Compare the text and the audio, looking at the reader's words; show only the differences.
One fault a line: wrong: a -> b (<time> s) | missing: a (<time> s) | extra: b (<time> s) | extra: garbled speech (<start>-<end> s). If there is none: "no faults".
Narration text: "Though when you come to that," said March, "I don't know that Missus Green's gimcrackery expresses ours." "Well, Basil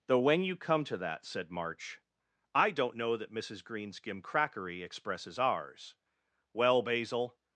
no faults